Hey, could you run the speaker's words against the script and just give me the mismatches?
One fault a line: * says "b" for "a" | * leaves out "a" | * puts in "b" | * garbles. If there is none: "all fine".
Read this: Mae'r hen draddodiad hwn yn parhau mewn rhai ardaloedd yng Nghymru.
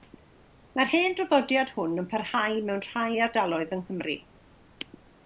all fine